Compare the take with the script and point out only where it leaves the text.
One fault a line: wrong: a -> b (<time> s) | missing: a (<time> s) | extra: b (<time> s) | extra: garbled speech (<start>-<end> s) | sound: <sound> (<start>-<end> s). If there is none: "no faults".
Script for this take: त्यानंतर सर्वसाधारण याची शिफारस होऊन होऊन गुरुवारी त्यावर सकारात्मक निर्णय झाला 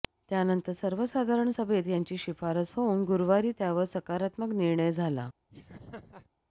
extra: सभेत (1.5 s)
missing: होऊन (3.0 s)
sound: laugh (5.5-6.3 s)